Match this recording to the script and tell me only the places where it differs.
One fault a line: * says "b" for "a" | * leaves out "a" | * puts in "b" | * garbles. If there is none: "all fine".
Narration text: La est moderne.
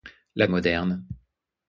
all fine